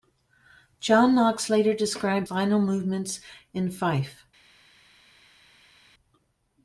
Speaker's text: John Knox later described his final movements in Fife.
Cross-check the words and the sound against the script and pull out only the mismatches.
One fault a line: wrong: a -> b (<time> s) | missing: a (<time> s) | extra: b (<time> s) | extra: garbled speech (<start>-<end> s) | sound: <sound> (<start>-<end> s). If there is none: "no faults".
missing: his (2.3 s)